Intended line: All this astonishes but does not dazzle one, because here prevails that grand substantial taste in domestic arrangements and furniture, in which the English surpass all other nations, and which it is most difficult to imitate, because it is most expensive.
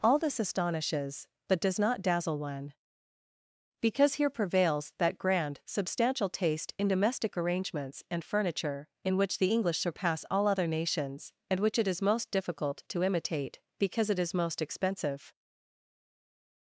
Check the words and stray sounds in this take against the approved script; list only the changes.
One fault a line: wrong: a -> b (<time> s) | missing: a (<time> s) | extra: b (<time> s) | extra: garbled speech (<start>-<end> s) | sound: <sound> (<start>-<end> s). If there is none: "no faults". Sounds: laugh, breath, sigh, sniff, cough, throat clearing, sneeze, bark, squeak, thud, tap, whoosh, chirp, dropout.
no faults